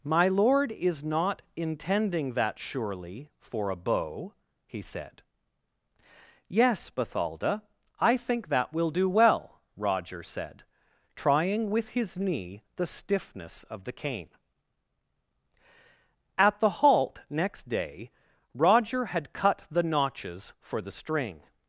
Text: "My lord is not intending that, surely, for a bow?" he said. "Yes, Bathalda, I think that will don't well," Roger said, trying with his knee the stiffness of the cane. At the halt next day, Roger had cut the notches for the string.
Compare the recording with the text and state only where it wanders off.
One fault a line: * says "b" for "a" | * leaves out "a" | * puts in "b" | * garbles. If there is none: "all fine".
* says "do" for "don't"